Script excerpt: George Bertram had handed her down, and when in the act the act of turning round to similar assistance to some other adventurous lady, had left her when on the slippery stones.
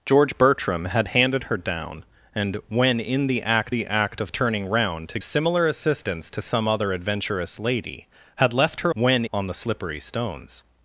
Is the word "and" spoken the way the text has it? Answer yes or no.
yes